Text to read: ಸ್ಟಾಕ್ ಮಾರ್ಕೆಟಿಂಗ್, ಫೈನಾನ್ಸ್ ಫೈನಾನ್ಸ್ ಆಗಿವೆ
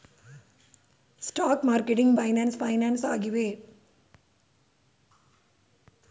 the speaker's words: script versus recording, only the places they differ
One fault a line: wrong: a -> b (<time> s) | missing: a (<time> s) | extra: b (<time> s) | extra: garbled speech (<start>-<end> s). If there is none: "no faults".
no faults